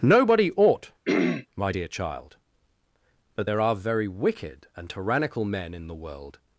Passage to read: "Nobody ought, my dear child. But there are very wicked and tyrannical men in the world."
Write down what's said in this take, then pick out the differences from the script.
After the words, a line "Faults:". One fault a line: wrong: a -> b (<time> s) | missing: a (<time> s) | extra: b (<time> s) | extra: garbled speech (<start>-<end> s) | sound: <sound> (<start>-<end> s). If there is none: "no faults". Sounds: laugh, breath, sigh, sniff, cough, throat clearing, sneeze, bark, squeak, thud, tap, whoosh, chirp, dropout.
"Nobody ought, my dear child. But there are very wicked and tyrannical men in the world."
Faults:
sound: throat clearing (1.1-1.5 s)